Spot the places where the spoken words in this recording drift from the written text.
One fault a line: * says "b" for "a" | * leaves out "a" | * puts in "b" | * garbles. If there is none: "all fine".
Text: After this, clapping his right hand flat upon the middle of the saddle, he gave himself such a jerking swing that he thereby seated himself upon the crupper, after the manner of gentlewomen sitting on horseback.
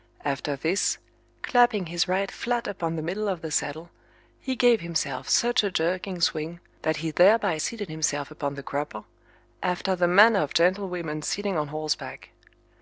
* leaves out "hand"